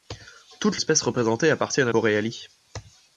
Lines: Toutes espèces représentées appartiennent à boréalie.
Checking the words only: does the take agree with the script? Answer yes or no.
yes